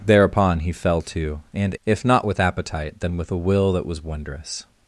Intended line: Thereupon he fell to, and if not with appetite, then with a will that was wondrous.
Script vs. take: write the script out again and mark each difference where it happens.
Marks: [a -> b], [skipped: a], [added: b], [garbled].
Thereupon he fell to, and if not with appetite, then with a will that was wondrous.